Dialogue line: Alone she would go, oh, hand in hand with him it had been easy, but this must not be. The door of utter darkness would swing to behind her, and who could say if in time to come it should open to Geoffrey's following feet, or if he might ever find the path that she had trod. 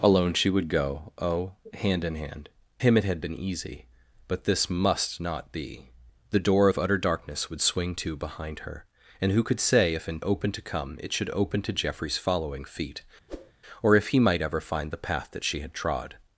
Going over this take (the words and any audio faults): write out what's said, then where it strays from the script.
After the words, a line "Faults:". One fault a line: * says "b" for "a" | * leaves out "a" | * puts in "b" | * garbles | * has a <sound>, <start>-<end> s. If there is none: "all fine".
Alone she would go, oh, hand in hand him it had been easy, but this must not be. The door of utter darkness would swing to behind her, and who could say if in open to come it should open to Geoffrey's following feet, or if he might ever find the path that she had trod.
Faults:
* leaves out "with"
* says "open" for "time"
* has a whoosh, 13.3-13.5 s